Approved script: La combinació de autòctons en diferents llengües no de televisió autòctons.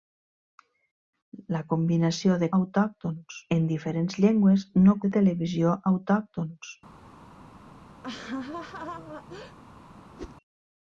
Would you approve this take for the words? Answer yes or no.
yes